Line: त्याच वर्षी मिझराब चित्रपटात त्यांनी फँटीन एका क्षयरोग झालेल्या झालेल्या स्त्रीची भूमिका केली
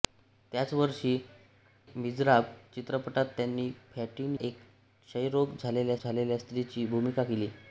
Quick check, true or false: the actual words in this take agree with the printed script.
true